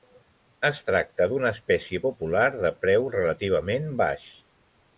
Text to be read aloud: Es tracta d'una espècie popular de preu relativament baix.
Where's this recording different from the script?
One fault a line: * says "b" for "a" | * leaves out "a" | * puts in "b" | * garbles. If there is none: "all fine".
all fine